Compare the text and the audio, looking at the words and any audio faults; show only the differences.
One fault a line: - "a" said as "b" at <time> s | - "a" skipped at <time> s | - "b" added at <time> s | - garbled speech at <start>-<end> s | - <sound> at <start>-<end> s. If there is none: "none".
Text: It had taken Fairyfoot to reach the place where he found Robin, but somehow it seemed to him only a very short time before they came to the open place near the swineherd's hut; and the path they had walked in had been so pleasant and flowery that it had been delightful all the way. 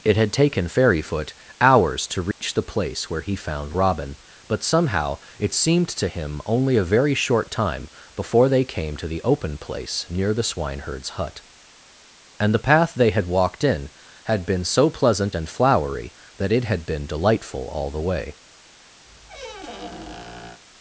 - "hours" added at 1.6 s
- dropout at 2.3-2.4 s
- squeak at 19.1-20.6 s